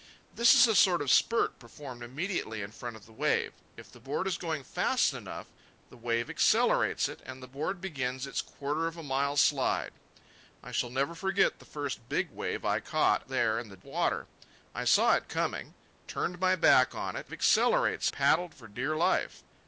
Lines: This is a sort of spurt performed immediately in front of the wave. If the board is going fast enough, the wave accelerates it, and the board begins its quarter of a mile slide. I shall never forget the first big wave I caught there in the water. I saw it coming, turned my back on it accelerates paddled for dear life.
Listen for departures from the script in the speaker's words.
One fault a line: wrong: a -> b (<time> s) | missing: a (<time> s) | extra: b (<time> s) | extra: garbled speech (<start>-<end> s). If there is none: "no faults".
no faults